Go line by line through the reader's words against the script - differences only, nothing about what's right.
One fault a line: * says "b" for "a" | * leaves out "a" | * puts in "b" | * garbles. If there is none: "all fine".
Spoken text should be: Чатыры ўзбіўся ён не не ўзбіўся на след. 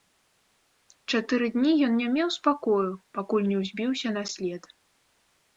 * says "дні" for "ўзбіўся"
* puts in "меў спакою пакуль"